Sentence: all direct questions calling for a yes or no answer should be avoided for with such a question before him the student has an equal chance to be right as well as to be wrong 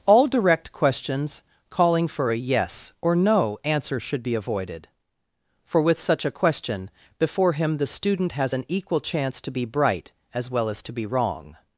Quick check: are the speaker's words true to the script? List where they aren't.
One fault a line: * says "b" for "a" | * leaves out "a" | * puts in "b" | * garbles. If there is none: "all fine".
* says "bright" for "right"